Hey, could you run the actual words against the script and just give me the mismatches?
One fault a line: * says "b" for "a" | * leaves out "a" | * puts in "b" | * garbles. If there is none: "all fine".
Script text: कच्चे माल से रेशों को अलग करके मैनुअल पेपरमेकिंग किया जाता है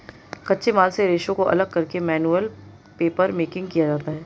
all fine